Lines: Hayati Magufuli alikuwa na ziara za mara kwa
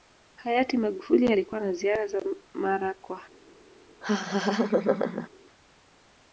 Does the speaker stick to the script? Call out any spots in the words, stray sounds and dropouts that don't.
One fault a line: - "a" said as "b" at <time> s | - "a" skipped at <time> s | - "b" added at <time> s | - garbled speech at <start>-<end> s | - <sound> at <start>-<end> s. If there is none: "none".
- laugh at 4.0-5.3 s